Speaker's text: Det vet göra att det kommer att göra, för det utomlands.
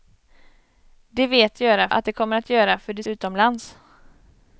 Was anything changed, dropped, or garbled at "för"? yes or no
no